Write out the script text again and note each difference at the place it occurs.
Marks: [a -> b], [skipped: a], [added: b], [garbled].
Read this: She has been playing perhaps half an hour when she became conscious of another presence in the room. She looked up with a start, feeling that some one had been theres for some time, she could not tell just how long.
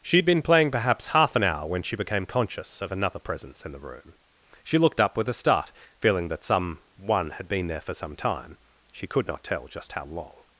She [has -> had] been playing perhaps half an hour when she became conscious of another presence in the room. She looked up with a start, feeling that some one had been [theres -> there] for some time, she could not tell just how long.